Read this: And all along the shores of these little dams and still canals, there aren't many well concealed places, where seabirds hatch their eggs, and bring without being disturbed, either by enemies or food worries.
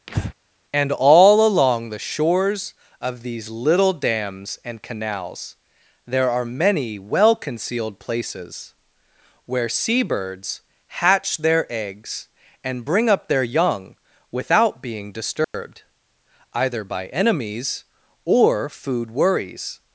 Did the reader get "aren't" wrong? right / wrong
wrong